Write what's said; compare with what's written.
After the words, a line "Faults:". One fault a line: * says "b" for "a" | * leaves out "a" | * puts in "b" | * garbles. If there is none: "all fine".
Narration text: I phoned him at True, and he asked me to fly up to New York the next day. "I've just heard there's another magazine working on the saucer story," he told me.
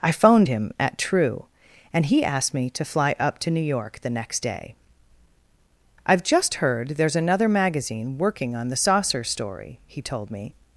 I phoned him at True, and he asked me to fly up to New York the next day. "I've just heard there's another magazine working on the saucer story," he told me.
Faults:
all fine